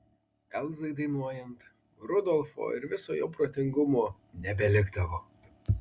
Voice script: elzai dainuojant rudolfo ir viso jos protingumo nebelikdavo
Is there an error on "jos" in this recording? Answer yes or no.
yes